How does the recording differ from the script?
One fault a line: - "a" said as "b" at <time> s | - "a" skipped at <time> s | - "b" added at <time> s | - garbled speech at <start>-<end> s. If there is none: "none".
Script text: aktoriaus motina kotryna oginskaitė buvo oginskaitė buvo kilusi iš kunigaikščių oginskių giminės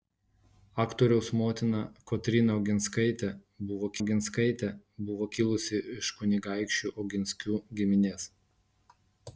none